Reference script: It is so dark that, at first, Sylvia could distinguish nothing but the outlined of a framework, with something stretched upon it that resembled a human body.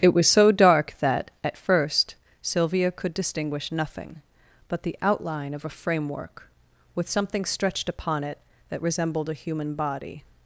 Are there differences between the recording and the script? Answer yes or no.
yes